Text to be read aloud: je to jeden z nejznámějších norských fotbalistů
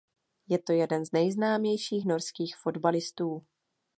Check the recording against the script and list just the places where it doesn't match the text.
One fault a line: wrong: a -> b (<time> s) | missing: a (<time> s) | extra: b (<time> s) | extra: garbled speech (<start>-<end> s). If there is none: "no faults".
no faults